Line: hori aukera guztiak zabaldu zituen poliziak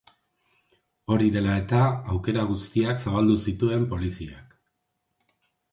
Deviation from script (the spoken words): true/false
true